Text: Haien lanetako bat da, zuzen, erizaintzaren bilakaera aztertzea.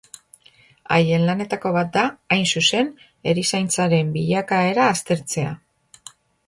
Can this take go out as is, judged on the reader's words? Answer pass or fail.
fail